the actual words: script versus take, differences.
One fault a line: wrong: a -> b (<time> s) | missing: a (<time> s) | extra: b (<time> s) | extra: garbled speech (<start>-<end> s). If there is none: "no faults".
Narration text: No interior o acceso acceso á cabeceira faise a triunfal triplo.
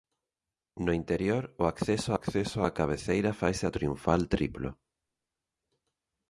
no faults